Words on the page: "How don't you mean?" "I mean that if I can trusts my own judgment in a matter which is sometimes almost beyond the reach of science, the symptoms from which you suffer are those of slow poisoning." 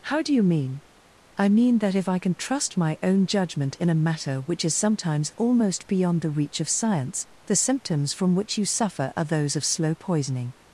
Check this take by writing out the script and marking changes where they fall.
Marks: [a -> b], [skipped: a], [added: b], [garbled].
"How [don't -> do] you mean?" "I mean that if I can [trusts -> trust] my own judgment in a matter which is sometimes almost beyond the reach of science, the symptoms from which you suffer are those of slow poisoning."